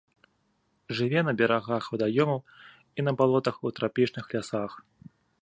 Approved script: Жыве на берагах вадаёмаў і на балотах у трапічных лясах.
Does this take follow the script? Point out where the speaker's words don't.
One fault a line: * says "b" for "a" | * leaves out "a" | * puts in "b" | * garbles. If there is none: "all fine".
all fine